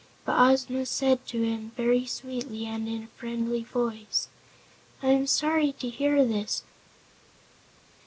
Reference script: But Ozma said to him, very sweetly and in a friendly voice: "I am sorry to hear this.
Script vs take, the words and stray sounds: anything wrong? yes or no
no